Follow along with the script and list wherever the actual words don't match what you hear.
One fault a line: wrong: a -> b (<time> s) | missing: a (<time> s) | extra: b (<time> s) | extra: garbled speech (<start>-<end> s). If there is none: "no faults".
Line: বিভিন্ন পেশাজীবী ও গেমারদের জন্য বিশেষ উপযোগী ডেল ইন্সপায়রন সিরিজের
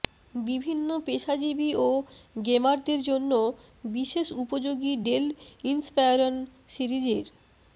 no faults